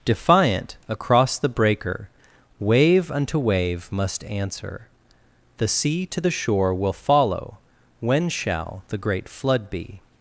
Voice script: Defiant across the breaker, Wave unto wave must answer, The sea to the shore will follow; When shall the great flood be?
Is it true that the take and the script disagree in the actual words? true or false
false